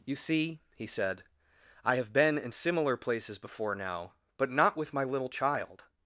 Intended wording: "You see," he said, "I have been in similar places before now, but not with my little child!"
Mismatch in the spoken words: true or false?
false